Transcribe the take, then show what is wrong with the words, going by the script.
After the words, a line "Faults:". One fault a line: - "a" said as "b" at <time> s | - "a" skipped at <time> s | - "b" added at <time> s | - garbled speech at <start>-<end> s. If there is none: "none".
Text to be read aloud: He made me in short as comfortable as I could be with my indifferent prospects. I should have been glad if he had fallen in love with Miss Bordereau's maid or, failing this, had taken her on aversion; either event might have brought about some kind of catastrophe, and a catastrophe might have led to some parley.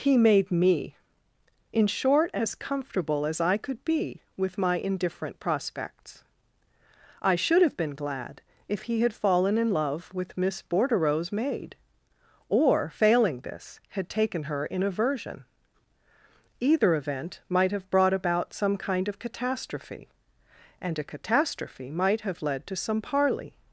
He made me in short as comfortable as I could be with my indifferent prospects. I should have been glad if he had fallen in love with Miss Bordereau's maid or, failing this, had taken her in aversion; either event might have brought about some kind of catastrophe, and a catastrophe might have led to some parley.
Faults:
- "on" said as "in" at 14.7 s